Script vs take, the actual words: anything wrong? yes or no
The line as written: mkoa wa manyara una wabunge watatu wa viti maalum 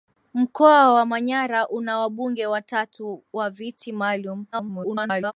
yes